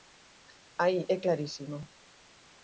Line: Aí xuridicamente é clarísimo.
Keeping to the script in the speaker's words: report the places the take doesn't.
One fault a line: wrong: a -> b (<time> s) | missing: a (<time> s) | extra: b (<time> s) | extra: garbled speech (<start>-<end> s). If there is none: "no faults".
missing: xuridicamente (1.0 s)